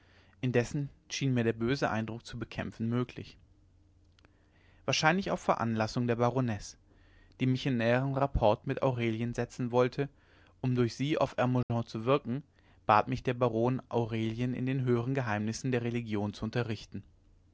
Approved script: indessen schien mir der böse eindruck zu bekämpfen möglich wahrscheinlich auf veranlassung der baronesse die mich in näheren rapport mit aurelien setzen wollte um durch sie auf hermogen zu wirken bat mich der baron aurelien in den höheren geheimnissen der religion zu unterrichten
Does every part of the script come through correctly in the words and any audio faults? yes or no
no